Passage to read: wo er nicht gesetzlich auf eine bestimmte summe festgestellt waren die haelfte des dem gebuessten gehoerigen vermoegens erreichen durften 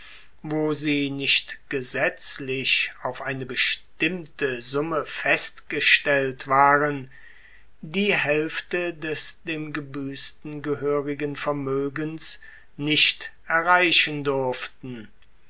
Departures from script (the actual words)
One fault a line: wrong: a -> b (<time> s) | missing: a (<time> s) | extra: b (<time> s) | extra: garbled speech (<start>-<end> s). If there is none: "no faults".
wrong: er -> sie (0.7 s)
extra: nicht (12.8 s)